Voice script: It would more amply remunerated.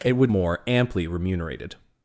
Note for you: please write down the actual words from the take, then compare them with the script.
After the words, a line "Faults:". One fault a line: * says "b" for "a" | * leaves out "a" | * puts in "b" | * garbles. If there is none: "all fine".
It would more amply remunerated.
Faults:
all fine